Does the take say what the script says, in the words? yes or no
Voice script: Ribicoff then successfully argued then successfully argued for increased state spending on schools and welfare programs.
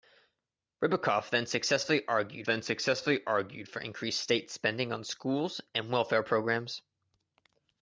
yes